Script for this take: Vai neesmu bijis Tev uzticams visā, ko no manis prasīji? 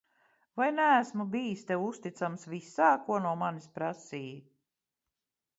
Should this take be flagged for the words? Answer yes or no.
no